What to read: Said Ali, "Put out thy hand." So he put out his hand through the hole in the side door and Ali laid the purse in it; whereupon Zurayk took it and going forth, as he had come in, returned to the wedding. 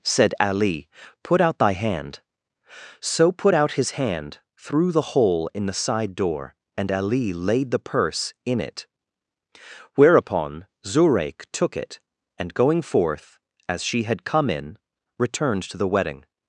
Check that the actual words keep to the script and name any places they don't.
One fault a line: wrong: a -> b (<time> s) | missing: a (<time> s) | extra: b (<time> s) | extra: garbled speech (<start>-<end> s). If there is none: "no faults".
missing: he (3.3 s)
wrong: he -> she (13.8 s)